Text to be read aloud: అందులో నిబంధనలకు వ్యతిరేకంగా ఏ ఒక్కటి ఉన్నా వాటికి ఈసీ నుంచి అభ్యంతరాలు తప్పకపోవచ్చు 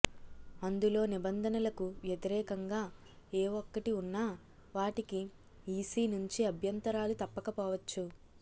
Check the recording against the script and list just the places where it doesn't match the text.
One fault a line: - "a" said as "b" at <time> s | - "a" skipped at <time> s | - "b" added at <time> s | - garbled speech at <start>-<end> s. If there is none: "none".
none